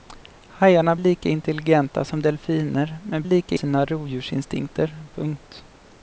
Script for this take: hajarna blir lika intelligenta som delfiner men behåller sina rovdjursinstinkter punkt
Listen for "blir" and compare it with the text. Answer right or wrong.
wrong